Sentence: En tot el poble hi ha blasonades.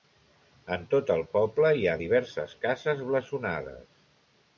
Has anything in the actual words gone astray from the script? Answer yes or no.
yes